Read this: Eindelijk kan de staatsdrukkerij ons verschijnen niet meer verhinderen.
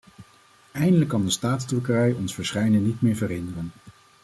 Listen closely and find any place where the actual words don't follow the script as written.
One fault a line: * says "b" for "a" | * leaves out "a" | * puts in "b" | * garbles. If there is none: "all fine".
all fine